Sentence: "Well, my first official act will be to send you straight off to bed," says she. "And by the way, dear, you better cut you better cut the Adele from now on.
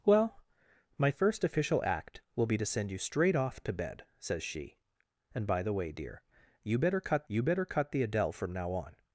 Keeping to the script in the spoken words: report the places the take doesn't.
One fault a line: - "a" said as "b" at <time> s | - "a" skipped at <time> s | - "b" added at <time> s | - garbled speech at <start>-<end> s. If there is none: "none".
none